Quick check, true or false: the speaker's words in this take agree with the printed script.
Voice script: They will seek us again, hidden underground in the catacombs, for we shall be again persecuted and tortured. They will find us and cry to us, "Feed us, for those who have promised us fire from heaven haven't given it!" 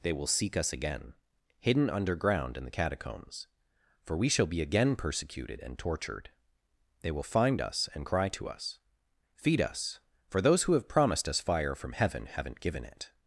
true